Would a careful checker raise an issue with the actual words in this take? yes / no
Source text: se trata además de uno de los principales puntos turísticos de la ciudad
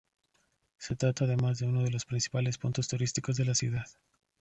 no